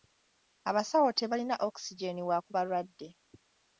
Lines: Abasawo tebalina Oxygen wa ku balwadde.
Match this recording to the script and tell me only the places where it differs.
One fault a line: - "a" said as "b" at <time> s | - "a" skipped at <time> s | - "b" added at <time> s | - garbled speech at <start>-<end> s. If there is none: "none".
none